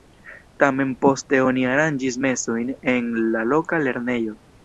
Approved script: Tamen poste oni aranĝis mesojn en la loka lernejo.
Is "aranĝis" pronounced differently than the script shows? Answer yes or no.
no